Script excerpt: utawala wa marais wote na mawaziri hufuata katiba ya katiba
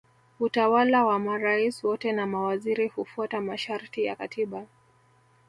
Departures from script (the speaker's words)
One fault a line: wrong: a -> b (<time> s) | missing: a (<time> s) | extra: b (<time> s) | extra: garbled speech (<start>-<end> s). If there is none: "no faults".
wrong: katiba -> masharti (3.4 s)